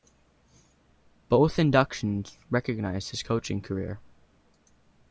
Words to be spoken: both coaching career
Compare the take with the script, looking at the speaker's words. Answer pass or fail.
fail